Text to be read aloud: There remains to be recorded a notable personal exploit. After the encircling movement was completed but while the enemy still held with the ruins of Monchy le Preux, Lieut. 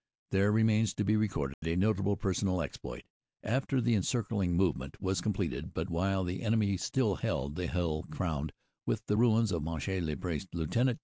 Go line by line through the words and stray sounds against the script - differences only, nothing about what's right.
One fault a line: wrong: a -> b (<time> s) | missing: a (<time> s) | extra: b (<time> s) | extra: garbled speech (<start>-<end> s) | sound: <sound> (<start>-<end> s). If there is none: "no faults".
sound: dropout (1.5-1.6 s)
extra: the hill crowned (7.6 s)